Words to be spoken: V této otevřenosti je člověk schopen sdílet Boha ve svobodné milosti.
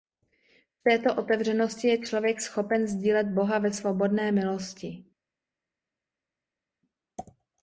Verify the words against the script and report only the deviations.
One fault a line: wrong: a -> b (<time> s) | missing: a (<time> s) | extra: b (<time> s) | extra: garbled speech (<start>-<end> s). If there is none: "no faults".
no faults